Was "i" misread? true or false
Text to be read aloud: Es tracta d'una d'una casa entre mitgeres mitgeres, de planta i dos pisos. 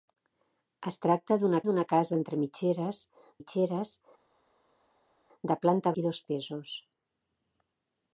false